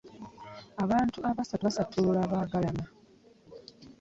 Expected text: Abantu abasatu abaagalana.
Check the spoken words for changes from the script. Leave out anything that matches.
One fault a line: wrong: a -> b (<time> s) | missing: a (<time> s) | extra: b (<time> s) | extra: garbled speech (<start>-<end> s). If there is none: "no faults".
extra: basattulula (1.7 s)